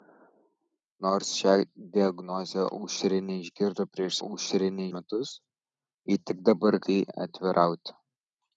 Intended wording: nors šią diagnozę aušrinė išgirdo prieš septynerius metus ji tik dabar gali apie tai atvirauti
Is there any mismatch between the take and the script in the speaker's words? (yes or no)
yes